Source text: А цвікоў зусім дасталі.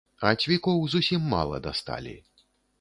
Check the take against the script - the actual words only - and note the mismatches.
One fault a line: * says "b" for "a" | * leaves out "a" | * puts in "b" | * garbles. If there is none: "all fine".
* puts in "мала"